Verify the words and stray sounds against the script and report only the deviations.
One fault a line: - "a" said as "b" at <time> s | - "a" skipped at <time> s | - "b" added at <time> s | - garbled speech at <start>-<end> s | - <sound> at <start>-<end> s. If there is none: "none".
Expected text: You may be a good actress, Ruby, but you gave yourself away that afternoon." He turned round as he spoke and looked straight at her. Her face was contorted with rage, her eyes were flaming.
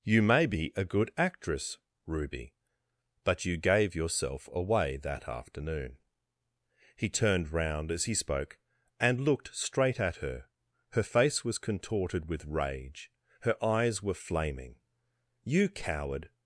- "You coward" added at 15.4 s